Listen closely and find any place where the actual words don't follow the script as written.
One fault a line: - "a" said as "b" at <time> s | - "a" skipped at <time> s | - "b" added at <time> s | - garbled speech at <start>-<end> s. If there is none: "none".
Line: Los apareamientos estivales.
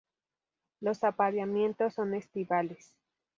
- "son" added at 1.9 s